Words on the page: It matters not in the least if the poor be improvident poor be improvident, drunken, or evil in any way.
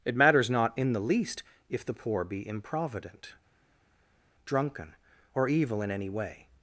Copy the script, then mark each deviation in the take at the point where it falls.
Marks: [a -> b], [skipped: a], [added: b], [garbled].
It matters not in the least if the poor be improvident [skipped: poor be improvident,] drunken, or evil in any way.